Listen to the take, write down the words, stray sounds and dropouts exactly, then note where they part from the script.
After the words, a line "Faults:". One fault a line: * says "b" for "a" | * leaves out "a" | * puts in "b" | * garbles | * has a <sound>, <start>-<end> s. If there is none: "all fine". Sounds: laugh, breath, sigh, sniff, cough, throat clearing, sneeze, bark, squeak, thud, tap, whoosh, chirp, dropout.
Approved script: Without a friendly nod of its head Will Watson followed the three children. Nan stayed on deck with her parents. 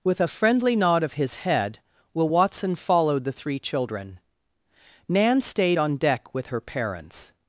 With a friendly nod of his head Will Watson followed the three children. Nan stayed on deck with her parents.
Faults:
* says "With" for "Without"
* says "his" for "its"